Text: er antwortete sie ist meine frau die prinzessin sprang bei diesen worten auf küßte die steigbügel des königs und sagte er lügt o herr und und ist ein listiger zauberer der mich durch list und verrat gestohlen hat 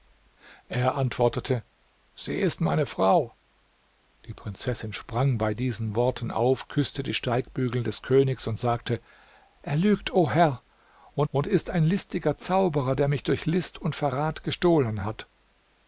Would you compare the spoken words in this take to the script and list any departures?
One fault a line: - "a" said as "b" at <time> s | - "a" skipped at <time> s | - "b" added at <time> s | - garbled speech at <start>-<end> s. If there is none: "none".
none